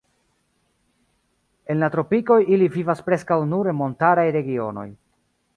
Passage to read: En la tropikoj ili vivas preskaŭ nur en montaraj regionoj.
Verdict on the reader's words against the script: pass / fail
pass